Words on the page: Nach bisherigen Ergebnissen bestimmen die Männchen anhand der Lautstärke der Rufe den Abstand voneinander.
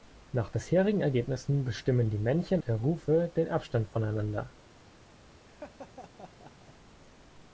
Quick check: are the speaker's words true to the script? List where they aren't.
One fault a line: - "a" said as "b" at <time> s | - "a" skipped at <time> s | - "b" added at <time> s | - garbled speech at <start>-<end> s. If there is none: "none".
- "anhand der Lautstärke" skipped at 2.6 s